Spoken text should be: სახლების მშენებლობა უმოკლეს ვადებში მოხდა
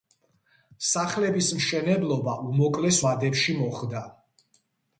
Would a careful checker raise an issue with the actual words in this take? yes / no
no